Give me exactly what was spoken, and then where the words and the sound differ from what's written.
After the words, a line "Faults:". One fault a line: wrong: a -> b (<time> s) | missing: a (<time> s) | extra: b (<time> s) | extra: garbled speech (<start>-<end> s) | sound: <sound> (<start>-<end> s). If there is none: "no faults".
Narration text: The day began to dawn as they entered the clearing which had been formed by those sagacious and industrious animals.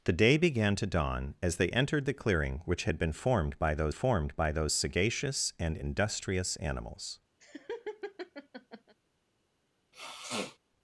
The day began to dawn as they entered the clearing which had been formed by those formed by those sagacious and industrious animals.
Faults:
extra: formed by those (3.9 s)
sound: laugh (7.4-9.0 s)
sound: sniff (9.9-10.6 s)